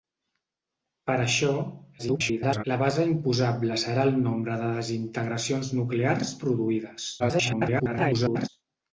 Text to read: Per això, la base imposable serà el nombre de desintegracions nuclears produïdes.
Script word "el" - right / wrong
right